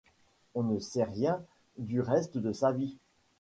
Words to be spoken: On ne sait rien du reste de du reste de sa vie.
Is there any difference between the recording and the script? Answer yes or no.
yes